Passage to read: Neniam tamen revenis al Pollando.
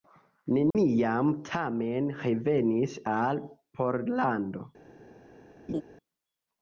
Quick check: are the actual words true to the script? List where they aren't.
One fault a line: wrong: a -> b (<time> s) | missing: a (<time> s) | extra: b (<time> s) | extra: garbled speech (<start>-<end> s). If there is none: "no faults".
no faults